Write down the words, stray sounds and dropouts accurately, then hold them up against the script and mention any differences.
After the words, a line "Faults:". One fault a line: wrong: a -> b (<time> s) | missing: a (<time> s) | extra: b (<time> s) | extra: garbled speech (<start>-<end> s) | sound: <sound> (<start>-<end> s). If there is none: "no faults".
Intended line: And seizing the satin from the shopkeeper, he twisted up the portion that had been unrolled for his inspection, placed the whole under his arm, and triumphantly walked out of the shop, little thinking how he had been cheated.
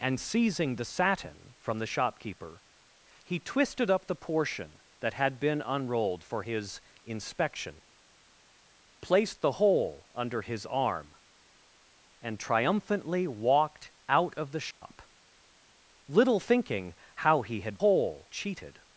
And seizing the satin from the shopkeeper, he twisted up the portion that had been unrolled for his inspection, placed the whole under his arm, and triumphantly walked out of the shop, little thinking how he had whole cheated.
Faults:
sound: dropout (14.7-14.8 s)
wrong: been -> whole (17.8 s)